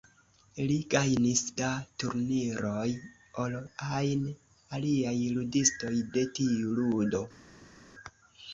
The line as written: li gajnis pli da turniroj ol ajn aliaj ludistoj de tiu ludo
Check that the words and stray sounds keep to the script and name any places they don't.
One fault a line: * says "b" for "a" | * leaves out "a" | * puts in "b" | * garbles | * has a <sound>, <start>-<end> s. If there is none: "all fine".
* leaves out "pli"